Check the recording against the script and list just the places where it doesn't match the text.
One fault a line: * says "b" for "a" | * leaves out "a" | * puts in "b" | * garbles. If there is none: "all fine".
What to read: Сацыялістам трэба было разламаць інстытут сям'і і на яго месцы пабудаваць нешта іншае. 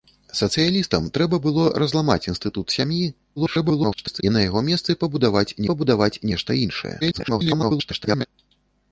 * garbles
* puts in "пабудаваць"
* garbles